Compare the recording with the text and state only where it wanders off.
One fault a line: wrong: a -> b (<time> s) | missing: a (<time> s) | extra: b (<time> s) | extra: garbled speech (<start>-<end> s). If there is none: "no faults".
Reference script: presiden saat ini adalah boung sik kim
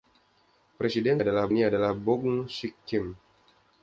wrong: saat -> adalah (1.2 s)